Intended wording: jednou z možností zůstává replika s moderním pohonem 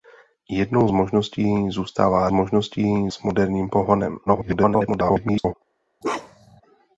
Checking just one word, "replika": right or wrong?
wrong